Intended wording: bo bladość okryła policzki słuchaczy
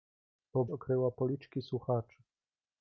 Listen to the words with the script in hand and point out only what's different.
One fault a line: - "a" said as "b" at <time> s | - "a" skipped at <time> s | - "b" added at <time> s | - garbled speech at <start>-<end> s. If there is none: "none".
- "bladość" skipped at 0.7 s